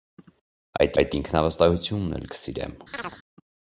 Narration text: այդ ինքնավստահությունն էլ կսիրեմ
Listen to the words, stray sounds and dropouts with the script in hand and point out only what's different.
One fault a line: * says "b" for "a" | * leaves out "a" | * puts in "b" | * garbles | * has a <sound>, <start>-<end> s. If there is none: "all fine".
* puts in "այդ"
* has a chirp, 2.9-3.2 s